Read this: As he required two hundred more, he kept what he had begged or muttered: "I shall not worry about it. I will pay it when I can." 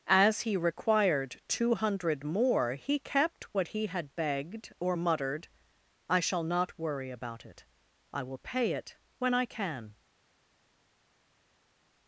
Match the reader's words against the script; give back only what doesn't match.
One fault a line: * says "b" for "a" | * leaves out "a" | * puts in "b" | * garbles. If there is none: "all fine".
all fine